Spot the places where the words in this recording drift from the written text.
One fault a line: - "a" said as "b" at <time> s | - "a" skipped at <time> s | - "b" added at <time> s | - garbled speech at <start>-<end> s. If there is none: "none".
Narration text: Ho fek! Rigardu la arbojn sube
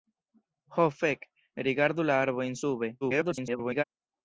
- garbled speech at 3.0-3.8 s